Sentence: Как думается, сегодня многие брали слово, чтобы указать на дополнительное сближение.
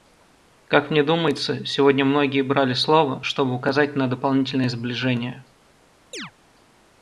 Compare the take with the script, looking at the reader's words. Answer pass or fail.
fail